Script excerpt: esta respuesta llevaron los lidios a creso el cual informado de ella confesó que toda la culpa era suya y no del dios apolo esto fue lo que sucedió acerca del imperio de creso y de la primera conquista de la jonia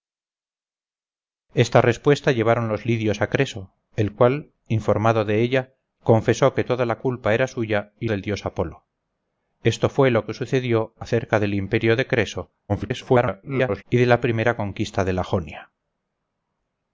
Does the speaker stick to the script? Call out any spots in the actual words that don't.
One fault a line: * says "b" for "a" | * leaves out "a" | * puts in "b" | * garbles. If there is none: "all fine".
* leaves out "no"
* garbles